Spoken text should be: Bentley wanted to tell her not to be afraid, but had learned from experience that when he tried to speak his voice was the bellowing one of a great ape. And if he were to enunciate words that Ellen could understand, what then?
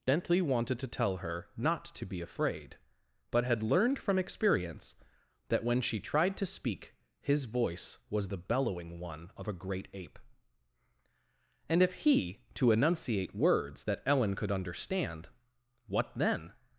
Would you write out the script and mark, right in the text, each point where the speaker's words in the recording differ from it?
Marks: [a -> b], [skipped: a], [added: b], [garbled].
Bentley wanted to tell her not to be afraid, but had learned from experience that when [he -> she] tried to speak his voice was the bellowing one of a great ape. And if he [skipped: were] to enunciate words that Ellen could understand, what then?